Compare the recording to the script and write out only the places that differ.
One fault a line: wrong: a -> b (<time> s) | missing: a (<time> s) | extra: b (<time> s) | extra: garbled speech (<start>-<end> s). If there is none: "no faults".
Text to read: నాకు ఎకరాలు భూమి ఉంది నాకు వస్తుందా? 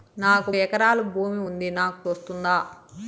no faults